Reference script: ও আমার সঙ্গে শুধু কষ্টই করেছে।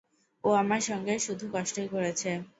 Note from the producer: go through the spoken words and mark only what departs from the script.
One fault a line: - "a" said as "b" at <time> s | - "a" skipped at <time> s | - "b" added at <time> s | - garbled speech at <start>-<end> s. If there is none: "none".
none